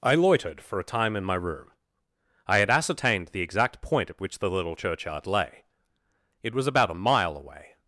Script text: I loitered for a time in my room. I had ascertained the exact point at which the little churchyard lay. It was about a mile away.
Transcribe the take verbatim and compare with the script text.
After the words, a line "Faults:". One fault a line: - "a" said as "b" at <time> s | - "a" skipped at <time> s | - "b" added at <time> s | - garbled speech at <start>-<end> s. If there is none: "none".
I loitered for a time in my room. I had ascertained the exact point at which the little churchyard lay. It was about a mile away.
Faults:
none